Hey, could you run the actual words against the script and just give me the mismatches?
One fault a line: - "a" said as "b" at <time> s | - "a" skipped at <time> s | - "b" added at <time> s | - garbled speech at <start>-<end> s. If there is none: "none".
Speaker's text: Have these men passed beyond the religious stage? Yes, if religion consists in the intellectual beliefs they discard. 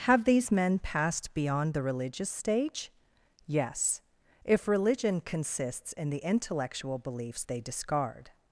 none